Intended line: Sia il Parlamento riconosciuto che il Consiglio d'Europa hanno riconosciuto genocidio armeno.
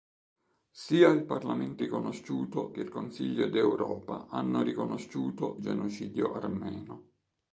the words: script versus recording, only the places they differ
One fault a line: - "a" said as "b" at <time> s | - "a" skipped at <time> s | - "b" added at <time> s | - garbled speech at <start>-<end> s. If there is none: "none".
none